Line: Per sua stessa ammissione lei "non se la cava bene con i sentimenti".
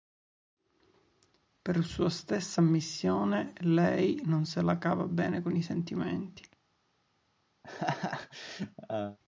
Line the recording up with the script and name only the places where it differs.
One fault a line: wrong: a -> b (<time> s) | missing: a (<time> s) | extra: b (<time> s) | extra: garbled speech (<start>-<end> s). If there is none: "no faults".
no faults